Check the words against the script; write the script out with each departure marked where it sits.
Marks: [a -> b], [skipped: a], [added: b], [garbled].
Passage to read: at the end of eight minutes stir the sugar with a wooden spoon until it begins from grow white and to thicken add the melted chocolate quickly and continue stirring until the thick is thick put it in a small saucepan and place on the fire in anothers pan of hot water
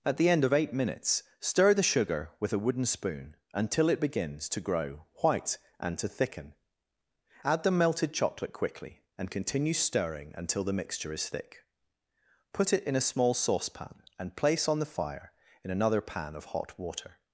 at the end of eight minutes stir the sugar with a wooden spoon until it begins [from -> to] grow white and to thicken add the melted chocolate quickly and continue stirring until the [thick -> mixture] is thick put it in a small saucepan and place on the fire in [anothers -> another] pan of hot water